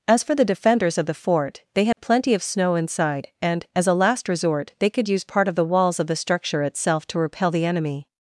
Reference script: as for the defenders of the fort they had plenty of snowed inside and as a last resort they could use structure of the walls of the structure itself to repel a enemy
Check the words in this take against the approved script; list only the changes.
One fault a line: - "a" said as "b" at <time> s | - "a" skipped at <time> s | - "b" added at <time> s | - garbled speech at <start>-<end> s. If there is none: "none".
- "snowed" said as "snow" at 2.4 s
- "structure" said as "part" at 5.2 s
- "a" said as "the" at 7.5 s